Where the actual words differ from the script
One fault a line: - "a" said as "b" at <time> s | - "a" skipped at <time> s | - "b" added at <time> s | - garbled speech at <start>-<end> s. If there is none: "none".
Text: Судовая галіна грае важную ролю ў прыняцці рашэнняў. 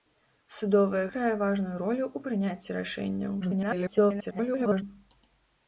- "галіна" skipped at 1.0 s
- garbled speech at 3.4-4.8 s